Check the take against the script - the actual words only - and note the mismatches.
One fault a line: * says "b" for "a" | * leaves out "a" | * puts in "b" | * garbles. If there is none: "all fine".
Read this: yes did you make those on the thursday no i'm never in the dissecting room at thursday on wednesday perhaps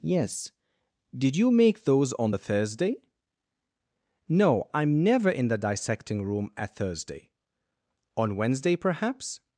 all fine